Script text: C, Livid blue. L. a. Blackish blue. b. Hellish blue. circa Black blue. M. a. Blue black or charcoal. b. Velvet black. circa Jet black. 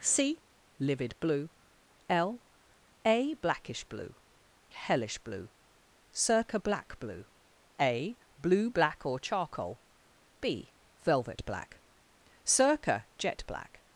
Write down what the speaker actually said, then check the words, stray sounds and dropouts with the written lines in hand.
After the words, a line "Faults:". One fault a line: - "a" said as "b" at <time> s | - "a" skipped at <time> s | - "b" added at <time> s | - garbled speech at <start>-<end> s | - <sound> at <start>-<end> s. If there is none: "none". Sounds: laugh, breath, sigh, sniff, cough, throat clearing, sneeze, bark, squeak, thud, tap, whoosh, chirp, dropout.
C, Livid blue. L. a. Blackish blue. Hellish blue. circa Black blue. A. Blue black or charcoal. b. Velvet black. circa Jet black.
Faults:
- "b" skipped at 4.2 s
- "M" skipped at 7.3 s